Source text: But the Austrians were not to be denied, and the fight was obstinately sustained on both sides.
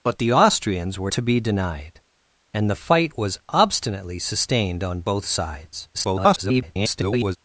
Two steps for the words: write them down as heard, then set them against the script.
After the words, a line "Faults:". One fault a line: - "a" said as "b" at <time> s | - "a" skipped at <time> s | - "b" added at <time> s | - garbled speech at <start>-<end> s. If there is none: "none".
But the Austrians were to be denied, and the fight was obstinately sustained on both sides. [garbled]
Faults:
- "not" skipped at 1.1 s
- garbled speech at 5.9-7.4 s